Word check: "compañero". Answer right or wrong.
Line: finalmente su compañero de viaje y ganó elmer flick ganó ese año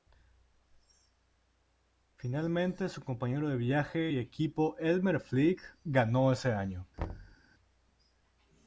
right